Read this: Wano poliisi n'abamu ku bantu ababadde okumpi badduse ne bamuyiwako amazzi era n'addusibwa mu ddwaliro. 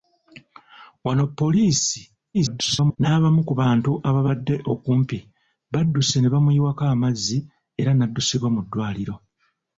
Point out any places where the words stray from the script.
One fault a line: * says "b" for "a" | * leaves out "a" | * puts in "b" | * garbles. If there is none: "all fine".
* garbles